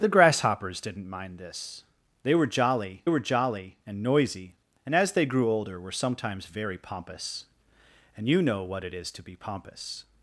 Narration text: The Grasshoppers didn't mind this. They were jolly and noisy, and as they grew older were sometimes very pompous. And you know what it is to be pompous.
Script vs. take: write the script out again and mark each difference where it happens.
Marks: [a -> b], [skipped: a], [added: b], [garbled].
The Grasshoppers didn't mind this. They were jolly [added: were jolly] and noisy, and as they grew older were sometimes very pompous. And you know what it is to be pompous.